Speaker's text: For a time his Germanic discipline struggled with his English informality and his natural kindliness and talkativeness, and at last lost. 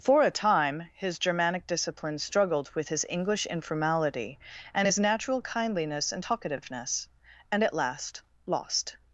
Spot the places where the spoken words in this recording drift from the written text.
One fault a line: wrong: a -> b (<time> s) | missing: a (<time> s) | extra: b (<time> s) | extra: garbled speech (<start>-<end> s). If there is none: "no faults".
no faults